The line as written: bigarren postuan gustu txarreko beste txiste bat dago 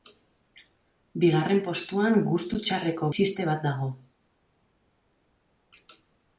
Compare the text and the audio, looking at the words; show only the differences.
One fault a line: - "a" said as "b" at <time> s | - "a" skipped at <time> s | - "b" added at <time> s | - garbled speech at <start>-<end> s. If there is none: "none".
- "beste" skipped at 3.1 s